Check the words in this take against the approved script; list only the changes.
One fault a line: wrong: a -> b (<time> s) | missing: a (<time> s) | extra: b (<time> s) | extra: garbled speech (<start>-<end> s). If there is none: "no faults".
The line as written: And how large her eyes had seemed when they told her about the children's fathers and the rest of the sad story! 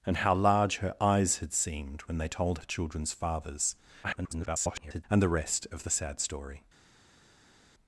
missing: her about (2.6 s)
extra: garbled speech (4.0-5.0 s)